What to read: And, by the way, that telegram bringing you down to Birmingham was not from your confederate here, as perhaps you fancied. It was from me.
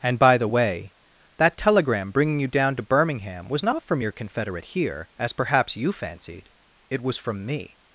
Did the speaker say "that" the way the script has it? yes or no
yes